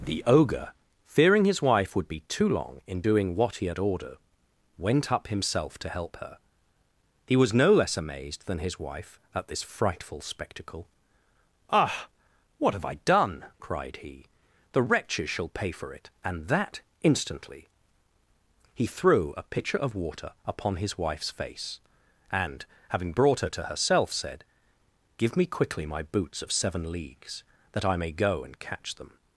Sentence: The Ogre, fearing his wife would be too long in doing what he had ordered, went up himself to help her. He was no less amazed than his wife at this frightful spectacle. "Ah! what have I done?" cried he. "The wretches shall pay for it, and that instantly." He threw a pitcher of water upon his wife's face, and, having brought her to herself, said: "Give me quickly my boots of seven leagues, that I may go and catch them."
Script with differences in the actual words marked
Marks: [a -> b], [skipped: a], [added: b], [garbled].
The Ogre, fearing his wife would be too long in doing what he had ordered, went up himself to help her. He was no less amazed than his wife at this frightful spectacle. "Ah! what have I done?" cried he. "The wretches shall pay for it, and that instantly." He threw a pitcher of water upon his wife's face, and, having brought her to herself, said: "Give me quickly my boots of seven leagues, that I may go and catch them."